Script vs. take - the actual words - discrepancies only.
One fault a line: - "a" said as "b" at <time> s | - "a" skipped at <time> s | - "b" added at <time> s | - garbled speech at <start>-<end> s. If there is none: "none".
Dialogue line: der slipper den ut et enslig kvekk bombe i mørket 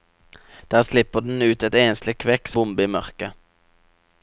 none